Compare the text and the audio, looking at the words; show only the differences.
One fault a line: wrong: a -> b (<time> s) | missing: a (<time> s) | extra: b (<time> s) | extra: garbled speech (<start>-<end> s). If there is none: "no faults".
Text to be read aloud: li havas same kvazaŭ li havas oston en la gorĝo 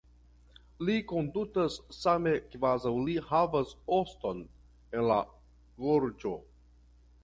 wrong: havas -> kondutas (1.1 s)